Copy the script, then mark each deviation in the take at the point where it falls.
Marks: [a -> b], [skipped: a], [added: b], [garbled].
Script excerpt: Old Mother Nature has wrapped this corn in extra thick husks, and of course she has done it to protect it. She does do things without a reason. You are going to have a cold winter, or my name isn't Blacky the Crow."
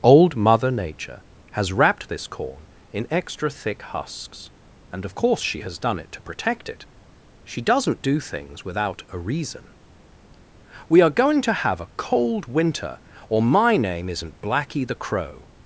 Old Mother Nature has wrapped this corn in extra thick husks, and of course she has done it to protect it. She [does -> doesn't] do things without a reason. [You -> We] are going to have a cold winter, or my name isn't Blacky the Crow."